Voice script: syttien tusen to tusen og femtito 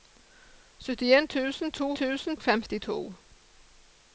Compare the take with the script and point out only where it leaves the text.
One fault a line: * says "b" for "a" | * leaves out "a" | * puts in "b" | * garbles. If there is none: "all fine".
all fine